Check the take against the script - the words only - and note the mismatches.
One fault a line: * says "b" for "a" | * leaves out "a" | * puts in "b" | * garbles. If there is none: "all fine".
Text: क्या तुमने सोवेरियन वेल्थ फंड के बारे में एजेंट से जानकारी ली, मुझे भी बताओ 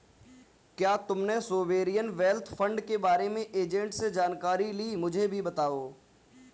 all fine